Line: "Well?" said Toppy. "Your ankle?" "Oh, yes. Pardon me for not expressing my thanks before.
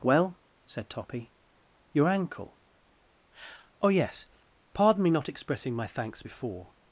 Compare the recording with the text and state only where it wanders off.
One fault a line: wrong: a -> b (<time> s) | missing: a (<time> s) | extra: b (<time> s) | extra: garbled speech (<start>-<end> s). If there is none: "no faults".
missing: for (5.1 s)